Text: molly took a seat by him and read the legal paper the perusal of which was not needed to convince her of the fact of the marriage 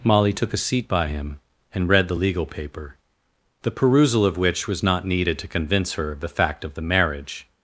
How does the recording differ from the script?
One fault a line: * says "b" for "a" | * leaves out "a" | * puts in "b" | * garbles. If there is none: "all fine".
all fine